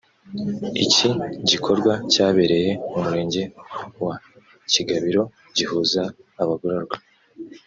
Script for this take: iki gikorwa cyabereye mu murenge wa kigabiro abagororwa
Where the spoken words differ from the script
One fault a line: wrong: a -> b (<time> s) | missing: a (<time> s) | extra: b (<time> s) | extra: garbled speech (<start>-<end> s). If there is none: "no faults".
extra: gihuza (5.6 s)